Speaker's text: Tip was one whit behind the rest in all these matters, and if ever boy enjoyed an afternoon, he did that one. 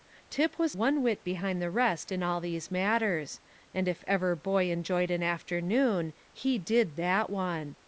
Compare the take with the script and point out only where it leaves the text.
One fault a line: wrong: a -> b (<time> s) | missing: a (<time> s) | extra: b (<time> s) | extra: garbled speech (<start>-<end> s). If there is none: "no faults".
no faults